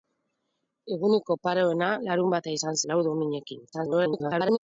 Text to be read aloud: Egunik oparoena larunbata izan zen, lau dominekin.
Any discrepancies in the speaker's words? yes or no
yes